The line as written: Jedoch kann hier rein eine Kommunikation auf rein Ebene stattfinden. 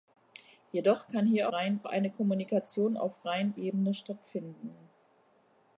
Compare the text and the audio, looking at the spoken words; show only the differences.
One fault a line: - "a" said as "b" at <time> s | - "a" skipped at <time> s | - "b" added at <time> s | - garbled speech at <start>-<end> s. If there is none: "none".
none